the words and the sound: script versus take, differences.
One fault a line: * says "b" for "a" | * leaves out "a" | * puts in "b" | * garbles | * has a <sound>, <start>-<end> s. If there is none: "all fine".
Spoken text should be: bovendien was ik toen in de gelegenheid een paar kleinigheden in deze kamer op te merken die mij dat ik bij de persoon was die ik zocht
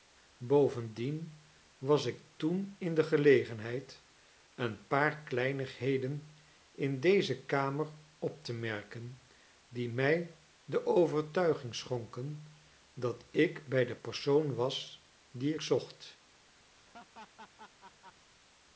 * puts in "de overtuiging schonken"
* has a laugh, 16.7-18.3 s